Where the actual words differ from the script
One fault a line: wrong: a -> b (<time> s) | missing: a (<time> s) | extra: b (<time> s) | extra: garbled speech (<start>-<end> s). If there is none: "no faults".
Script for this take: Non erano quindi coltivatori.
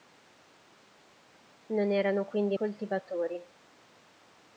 no faults